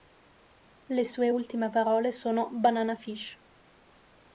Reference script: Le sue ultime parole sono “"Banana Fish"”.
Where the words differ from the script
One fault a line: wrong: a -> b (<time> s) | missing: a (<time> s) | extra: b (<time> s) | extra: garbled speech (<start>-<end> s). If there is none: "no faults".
no faults